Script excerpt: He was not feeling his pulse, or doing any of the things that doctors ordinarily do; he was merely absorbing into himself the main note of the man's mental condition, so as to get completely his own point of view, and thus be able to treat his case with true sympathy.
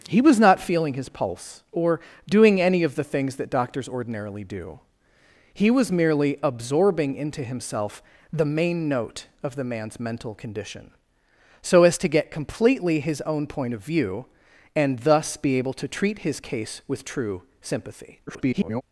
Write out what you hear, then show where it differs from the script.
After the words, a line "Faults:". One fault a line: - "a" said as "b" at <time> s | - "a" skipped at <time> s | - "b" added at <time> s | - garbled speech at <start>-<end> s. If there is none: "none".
He was not feeling his pulse, or doing any of the things that doctors ordinarily do; he was merely absorbing into himself the main note of the man's mental condition, so as to get completely his own point of view, and thus be able to treat his case with true sympathy. [garbled]
Faults:
- garbled speech at 18.3-18.8 s